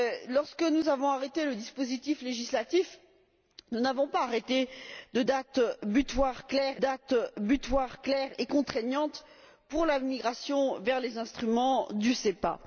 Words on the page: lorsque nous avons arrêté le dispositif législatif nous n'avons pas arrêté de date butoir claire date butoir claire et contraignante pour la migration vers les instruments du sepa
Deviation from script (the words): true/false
false